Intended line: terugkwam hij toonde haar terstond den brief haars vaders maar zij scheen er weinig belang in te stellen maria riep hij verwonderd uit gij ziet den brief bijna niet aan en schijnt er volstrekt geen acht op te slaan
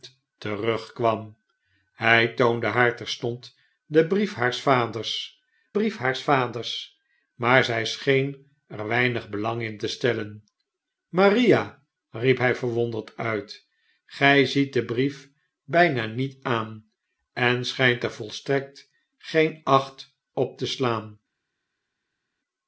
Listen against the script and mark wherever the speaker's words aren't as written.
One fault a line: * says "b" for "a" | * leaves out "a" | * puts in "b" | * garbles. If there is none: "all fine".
* puts in "brief haars vaders"